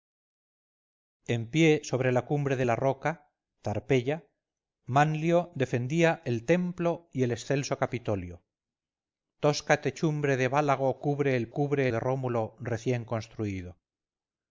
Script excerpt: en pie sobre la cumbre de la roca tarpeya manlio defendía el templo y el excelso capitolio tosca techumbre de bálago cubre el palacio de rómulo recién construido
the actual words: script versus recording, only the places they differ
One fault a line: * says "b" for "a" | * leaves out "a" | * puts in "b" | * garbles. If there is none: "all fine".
* says "cubre" for "palacio"